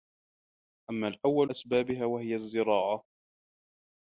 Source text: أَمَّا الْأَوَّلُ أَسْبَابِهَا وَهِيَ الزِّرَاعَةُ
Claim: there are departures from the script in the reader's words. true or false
false